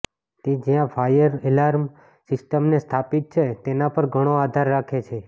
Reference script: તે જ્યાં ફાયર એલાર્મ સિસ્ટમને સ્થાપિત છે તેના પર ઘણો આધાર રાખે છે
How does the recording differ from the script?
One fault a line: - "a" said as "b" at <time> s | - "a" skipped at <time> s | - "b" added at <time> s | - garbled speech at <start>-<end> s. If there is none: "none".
none